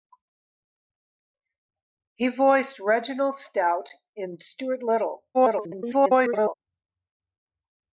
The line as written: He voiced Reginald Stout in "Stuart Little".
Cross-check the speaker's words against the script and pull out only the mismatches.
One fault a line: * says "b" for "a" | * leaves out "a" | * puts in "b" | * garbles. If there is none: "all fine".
* garbles